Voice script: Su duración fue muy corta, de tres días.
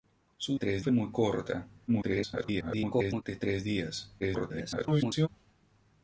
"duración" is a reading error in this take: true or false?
true